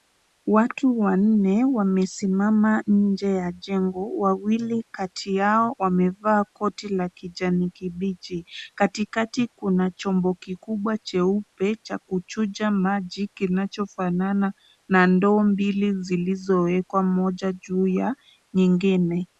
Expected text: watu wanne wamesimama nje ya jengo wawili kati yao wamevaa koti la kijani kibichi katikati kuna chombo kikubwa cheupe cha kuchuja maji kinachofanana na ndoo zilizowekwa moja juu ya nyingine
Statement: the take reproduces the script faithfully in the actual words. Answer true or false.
false